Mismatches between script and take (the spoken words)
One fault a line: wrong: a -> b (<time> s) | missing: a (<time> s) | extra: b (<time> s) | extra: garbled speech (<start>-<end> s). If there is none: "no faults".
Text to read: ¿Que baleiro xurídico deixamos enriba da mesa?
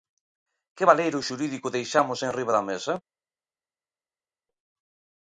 no faults